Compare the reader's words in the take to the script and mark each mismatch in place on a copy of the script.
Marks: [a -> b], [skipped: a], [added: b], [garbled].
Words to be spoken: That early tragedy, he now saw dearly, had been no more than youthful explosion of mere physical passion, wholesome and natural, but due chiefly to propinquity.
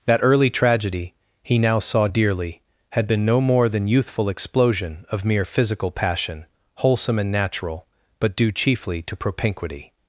That early tragedy, he now saw dearly, had been no more than youthful explosion of mere physical passion, wholesome and natural, but due chiefly to propinquity.